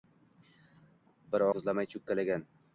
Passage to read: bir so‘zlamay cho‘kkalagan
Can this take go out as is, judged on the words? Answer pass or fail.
pass